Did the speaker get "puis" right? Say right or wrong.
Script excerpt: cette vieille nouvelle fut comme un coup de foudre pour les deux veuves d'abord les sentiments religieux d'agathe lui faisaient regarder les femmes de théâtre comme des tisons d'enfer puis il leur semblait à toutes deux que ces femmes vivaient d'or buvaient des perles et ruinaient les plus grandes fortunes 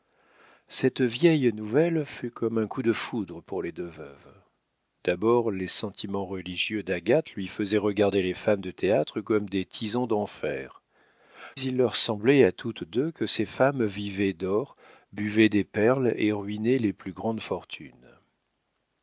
wrong